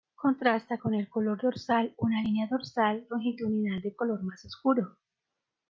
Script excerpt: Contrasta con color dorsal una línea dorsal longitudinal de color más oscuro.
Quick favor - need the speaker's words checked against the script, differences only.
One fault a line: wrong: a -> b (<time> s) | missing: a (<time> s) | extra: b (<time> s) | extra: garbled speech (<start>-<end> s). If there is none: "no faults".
extra: el (0.9 s)